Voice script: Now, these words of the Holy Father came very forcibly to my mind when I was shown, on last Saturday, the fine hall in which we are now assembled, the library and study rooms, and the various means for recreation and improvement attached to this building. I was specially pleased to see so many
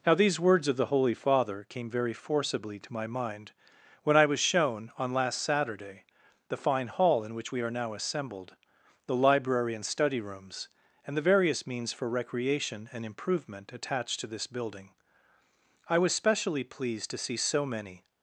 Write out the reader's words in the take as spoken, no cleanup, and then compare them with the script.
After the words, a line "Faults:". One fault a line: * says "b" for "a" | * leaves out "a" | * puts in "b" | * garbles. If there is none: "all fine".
Now, these words of the Holy Father came very forcibly to my mind when I was shown, on last Saturday, the fine hall in which we are now assembled, the library and study rooms, and the various means for recreation and improvement attached to this building. I was specially pleased to see so many
Faults:
all fine